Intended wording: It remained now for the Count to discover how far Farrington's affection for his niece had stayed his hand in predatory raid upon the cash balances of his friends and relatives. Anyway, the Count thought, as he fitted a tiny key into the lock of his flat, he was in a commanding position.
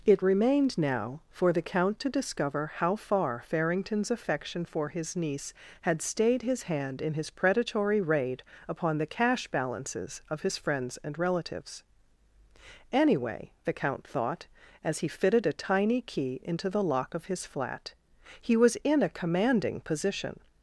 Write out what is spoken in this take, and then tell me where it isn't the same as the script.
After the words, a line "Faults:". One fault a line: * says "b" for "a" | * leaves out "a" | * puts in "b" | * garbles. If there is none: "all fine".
It remained now for the Count to discover how far Farrington's affection for his niece had stayed his hand in his predatory raid upon the cash balances of his friends and relatives. Anyway, the Count thought, as he fitted a tiny key into the lock of his flat, he was in a commanding position.
Faults:
* puts in "his"